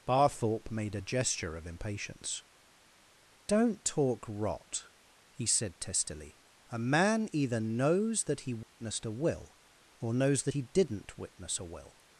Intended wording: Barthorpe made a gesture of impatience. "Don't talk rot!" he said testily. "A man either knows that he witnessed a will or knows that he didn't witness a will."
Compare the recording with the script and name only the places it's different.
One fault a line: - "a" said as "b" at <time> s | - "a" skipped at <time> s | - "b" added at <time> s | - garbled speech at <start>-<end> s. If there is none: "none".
none